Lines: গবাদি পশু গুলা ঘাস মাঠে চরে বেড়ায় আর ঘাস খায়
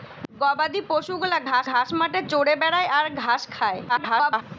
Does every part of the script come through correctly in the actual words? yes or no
no